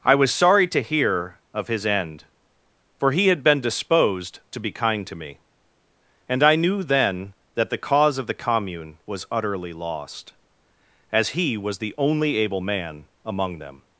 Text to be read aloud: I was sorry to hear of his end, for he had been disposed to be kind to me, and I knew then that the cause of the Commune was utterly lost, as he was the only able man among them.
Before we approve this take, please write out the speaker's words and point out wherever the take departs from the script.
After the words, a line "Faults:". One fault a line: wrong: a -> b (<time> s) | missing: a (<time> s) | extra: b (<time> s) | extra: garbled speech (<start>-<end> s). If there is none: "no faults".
I was sorry to hear of his end, for he had been disposed to be kind to me, and I knew then that the cause of the Commune was utterly lost, as he was the only able man among them.
Faults:
no faults